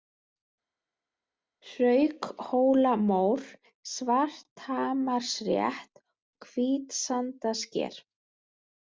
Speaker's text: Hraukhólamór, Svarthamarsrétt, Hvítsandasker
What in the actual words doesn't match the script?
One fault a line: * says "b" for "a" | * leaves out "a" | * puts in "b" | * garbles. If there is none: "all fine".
all fine